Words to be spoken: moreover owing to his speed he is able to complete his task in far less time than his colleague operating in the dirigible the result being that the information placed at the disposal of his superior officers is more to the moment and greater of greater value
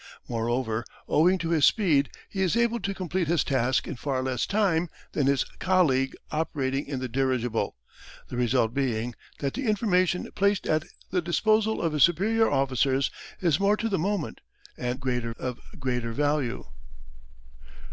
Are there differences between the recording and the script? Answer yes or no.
no